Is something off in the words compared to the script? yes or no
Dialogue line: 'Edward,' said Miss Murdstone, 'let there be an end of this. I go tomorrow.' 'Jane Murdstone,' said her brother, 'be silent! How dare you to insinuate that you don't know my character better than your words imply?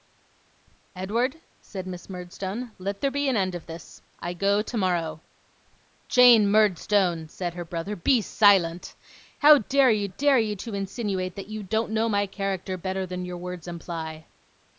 yes